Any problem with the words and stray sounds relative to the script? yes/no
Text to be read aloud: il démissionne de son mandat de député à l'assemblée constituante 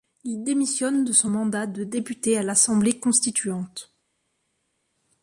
no